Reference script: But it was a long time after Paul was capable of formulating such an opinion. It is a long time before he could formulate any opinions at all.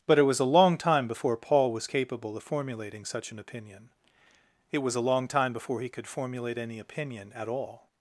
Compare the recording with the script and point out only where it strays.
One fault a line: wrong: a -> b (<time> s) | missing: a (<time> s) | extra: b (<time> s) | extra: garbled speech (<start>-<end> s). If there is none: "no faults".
wrong: after -> before (1.1 s)
wrong: is -> was (4.8 s)
wrong: opinions -> opinion (6.8 s)